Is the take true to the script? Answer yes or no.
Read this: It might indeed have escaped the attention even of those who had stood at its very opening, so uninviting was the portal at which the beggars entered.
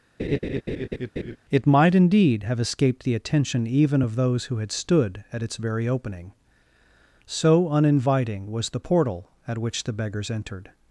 yes